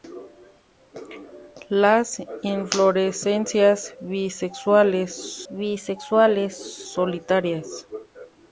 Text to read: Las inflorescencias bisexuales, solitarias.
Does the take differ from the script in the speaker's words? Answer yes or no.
yes